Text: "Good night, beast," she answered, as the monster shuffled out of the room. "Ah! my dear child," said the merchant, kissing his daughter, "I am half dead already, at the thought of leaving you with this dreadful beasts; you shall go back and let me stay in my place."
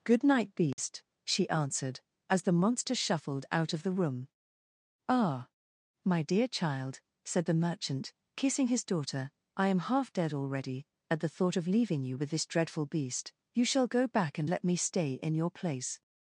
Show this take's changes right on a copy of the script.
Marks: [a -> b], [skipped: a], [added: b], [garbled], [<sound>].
"Good night, beast," [dropout] she answered, as the monster shuffled out of the room. "Ah! my dear child," said the merchant, kissing his daughter, "I am half dead already, at the thought of leaving you with this dreadful [beasts; -> beast] you shall go back and let me stay in [my -> your] place."